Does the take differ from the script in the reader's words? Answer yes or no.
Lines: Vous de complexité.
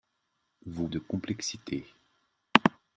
no